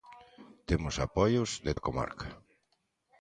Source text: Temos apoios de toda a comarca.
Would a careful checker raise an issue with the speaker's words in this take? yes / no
yes